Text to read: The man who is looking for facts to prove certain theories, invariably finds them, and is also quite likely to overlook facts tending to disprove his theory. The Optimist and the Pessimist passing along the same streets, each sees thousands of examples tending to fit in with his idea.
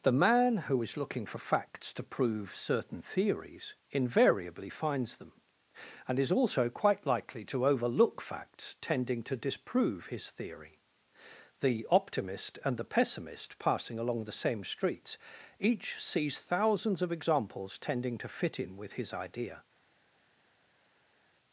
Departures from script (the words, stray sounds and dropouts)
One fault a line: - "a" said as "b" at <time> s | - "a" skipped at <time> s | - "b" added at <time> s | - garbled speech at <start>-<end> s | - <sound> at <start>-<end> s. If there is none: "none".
none